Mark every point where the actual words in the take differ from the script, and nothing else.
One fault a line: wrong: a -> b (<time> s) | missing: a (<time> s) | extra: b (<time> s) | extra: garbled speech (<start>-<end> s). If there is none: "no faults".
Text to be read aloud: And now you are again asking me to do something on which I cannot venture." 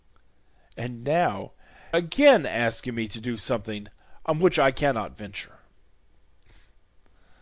missing: you are (1.5 s)